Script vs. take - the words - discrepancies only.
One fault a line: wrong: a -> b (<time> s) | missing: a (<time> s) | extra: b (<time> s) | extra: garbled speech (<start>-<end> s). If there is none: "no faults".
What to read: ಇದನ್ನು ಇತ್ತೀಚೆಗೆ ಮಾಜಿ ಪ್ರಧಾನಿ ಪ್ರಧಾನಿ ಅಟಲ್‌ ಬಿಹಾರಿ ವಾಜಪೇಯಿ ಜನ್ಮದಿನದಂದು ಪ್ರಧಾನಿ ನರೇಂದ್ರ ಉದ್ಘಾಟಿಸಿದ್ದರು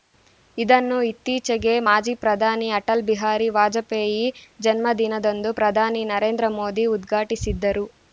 missing: ಪ್ರಧಾನಿ (2.7 s)
extra: ಮೋದಿ (6.6 s)